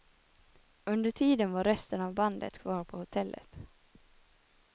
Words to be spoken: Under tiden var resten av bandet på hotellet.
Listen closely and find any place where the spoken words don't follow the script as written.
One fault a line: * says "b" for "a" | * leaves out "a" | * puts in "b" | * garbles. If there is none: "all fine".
* puts in "kvar"